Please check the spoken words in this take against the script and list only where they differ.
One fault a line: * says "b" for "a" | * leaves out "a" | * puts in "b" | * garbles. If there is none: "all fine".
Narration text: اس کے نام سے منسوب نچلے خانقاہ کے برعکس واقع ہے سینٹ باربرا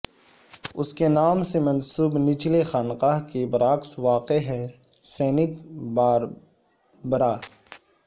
all fine